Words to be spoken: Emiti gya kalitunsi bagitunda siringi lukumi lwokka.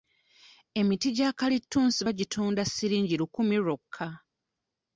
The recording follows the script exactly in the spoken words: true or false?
true